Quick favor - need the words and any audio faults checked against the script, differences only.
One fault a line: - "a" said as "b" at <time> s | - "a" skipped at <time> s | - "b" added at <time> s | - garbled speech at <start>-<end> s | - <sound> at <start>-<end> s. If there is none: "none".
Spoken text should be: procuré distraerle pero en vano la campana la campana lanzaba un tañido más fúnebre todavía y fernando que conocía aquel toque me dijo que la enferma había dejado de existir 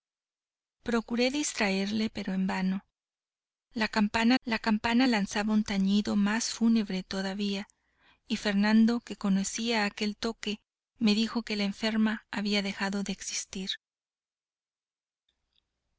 none